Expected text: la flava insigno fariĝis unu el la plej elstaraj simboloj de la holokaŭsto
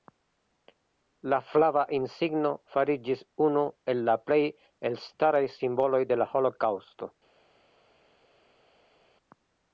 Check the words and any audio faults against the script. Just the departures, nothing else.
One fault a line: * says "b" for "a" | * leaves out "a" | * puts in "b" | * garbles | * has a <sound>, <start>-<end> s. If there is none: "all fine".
all fine